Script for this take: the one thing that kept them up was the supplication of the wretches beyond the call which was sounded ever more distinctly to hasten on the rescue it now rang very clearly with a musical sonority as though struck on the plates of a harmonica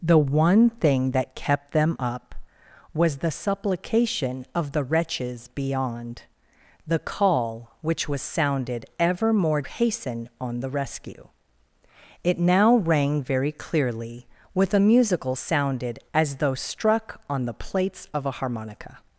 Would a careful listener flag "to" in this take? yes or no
yes